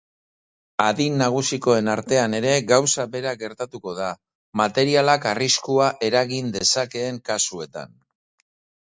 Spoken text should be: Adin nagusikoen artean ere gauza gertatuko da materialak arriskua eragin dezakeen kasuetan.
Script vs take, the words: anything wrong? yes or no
yes